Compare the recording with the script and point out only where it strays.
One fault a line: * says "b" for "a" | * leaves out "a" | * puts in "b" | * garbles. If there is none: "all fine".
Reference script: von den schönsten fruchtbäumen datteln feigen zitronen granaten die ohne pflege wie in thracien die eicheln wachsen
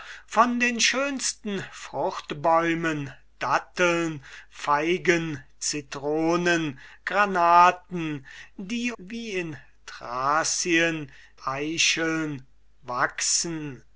* leaves out "ohne pflege"
* leaves out "die"